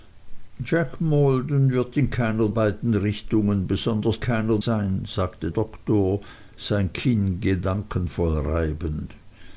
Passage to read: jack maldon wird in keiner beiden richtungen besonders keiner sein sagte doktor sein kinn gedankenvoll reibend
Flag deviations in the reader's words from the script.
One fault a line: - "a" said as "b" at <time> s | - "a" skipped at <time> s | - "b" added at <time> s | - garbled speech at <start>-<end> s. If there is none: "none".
none